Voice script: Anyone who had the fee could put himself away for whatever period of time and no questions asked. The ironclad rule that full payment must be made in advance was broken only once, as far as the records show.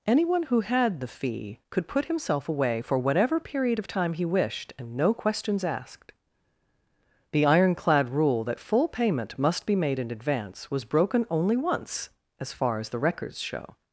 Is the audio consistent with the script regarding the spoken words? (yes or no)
no